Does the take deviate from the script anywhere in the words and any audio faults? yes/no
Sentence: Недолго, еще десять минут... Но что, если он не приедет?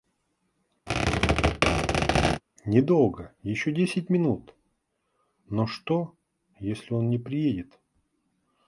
yes